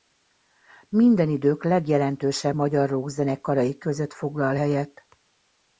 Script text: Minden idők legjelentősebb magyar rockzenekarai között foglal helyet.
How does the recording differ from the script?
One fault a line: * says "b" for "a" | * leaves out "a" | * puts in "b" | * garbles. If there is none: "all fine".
all fine